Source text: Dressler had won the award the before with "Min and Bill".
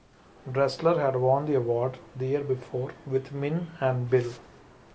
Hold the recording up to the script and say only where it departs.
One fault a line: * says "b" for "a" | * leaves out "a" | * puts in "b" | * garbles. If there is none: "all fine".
* puts in "year"